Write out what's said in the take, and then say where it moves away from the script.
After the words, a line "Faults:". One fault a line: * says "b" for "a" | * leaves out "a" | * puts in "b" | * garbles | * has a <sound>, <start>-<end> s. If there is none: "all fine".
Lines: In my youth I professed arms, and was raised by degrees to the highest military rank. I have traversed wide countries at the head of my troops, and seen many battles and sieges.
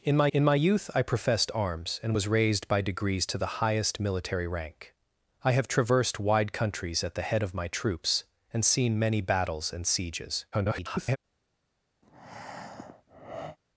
In my in my youth I professed arms, and was raised by degrees to the highest military rank. I have traversed wide countries at the head of my troops, and seen many battles and sieges. [garbled]
Faults:
* puts in "in my"
* garbles
* has a breath, 12.0-13.6 s